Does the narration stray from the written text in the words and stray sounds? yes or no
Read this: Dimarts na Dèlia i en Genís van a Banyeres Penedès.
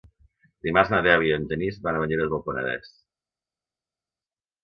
yes